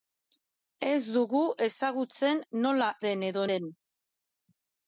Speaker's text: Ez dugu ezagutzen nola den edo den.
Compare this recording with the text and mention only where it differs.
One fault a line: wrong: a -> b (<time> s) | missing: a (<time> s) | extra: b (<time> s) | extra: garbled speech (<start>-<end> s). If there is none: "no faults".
no faults